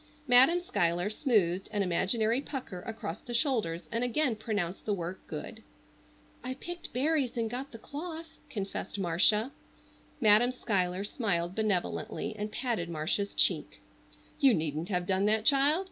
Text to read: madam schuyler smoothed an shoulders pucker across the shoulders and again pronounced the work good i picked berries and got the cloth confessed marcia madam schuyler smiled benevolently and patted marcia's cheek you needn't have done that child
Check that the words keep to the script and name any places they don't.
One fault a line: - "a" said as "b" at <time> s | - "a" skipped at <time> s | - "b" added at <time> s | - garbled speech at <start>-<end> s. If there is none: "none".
- "shoulders" said as "imaginary" at 1.8 s